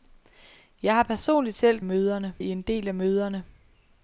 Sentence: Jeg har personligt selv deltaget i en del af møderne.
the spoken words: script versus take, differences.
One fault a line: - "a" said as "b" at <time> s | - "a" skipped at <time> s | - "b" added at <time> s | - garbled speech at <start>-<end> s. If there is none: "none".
- "deltaget" said as "møderne" at 1.8 s